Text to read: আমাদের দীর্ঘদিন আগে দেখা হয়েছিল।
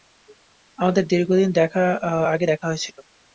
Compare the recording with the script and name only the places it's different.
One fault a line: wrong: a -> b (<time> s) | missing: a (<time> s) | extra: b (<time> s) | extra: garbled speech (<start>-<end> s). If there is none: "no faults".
no faults